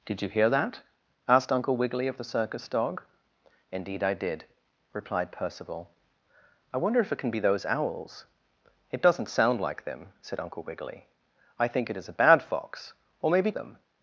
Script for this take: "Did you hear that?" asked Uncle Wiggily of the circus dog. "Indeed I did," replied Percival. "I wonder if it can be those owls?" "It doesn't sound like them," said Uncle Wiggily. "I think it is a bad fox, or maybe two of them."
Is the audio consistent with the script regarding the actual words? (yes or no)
no